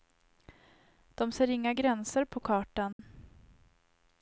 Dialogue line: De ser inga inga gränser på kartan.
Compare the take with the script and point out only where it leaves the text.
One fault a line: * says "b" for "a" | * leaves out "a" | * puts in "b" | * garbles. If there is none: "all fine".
* leaves out "inga"